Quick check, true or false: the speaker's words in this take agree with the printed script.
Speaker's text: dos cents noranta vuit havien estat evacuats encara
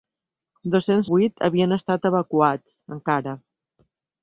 false